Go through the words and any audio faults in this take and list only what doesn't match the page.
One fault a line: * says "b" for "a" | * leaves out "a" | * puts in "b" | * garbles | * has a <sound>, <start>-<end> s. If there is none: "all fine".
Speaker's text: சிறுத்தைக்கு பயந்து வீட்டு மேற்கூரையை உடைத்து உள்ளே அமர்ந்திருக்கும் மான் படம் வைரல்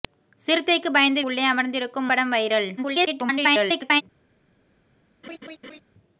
* leaves out "வீட்டு மேற்கூரையை உடைத்து"
* leaves out "மான்"
* garbles
* has a laugh, 5.2-5.8 s